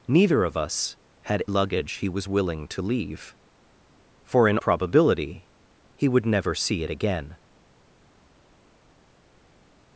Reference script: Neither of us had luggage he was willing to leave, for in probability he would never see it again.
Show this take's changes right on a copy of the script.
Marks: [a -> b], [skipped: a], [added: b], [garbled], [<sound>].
Neither of us had luggage he was willing to leave, for in probability he would never see it again.